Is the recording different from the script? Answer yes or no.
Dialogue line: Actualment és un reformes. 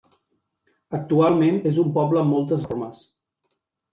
yes